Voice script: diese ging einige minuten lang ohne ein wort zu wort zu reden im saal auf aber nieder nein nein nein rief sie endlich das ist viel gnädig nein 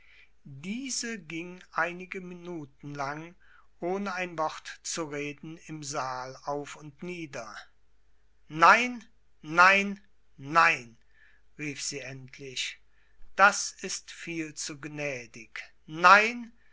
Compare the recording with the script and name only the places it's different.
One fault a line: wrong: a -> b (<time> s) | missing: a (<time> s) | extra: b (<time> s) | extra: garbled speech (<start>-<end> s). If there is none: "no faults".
missing: wort zu (5.0 s)
wrong: aber -> und (6.8 s)
extra: zu (14.5 s)